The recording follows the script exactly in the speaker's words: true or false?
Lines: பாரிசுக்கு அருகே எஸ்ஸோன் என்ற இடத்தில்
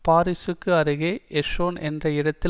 true